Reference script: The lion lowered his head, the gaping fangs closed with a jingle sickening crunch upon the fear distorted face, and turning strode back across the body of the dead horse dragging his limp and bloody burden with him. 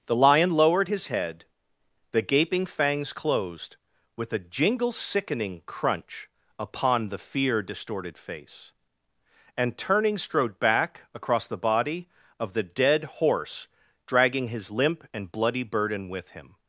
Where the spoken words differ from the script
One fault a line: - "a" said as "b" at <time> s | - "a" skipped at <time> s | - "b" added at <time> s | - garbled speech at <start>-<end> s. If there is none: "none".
none